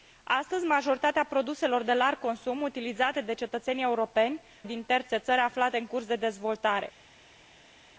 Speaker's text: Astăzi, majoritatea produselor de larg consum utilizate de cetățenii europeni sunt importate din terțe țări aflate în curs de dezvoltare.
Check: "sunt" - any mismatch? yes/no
yes